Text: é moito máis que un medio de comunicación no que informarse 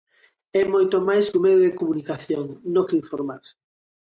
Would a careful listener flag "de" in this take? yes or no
no